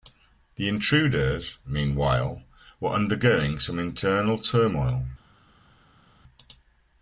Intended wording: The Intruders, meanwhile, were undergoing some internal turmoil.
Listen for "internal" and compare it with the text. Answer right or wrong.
right